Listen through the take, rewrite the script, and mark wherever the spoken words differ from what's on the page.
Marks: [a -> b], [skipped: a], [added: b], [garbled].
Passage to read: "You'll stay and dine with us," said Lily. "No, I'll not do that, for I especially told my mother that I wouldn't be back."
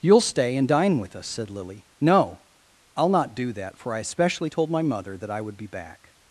"You'll stay and dine with us," said Lily. "No, I'll not do that, for I especially told my mother that I [wouldn't -> would] be back."